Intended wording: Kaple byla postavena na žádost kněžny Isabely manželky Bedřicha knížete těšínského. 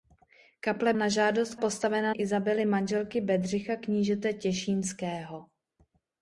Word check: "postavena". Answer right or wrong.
wrong